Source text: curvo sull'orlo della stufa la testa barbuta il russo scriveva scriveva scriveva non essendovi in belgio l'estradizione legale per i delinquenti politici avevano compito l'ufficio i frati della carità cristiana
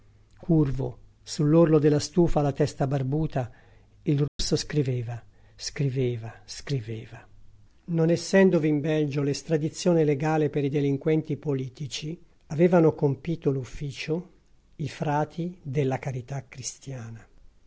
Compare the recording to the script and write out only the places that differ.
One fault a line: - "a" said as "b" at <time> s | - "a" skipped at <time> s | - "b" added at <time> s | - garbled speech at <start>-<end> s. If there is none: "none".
none